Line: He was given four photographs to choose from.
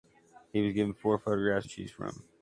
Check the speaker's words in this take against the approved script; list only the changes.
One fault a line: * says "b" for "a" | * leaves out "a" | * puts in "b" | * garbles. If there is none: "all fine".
all fine